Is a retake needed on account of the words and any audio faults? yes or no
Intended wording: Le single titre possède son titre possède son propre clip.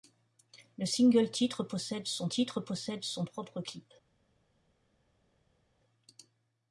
no